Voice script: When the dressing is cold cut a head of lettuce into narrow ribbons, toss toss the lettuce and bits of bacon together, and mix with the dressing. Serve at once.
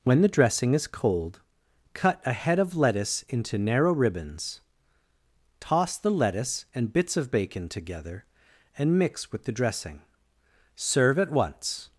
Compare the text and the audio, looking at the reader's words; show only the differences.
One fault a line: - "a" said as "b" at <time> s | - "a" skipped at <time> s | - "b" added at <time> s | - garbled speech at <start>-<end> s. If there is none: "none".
- "toss" skipped at 6.0 s